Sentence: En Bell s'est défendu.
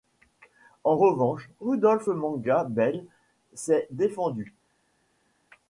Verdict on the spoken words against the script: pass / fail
fail